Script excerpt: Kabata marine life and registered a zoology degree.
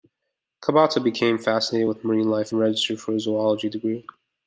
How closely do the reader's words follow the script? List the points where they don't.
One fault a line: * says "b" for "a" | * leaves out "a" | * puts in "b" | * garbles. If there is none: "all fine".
* puts in "became fascinated with"
* puts in "for"